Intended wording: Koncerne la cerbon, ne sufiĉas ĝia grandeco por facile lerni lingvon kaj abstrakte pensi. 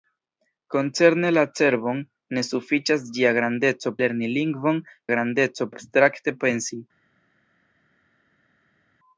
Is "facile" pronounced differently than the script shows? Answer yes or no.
yes